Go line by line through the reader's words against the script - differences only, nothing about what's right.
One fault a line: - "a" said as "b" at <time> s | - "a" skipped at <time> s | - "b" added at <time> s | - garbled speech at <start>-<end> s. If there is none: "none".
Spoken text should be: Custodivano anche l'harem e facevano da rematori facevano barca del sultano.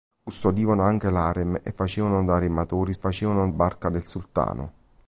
none